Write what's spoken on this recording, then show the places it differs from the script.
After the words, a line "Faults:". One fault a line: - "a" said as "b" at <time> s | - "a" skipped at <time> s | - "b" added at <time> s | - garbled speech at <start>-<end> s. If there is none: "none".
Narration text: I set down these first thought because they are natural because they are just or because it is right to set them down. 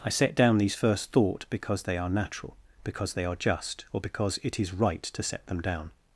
I set down these first thought because they are natural because they are just or because it is right to set them down.
Faults:
none